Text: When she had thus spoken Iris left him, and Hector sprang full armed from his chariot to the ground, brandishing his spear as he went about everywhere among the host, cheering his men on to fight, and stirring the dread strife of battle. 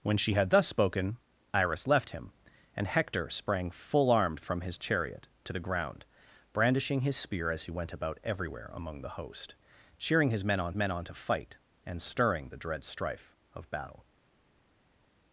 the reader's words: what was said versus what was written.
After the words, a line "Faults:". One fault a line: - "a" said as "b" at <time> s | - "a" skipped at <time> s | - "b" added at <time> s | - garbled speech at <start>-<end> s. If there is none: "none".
When she had thus spoken Iris left him, and Hector sprang full armed from his chariot to the ground, brandishing his spear as he went about everywhere among the host, cheering his men on men on to fight, and stirring the dread strife of battle.
Faults:
- "men on" added at 10.8 s